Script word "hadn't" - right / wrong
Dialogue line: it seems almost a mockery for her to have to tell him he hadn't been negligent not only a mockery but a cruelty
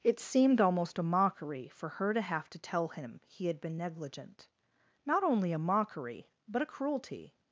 wrong